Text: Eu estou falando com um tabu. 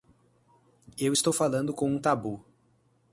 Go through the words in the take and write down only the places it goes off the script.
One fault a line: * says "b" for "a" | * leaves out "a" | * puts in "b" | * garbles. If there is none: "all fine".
all fine